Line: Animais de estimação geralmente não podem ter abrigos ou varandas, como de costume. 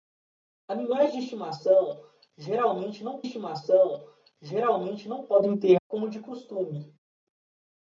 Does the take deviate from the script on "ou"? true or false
true